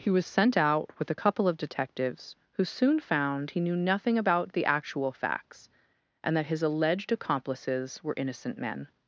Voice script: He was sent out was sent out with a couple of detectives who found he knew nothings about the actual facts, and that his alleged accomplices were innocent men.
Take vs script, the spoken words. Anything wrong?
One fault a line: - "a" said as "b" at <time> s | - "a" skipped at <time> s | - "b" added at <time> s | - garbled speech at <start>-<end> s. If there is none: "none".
- "was sent out" skipped at 0.9 s
- "soon" added at 2.6 s
- "nothings" said as "nothing" at 3.7 s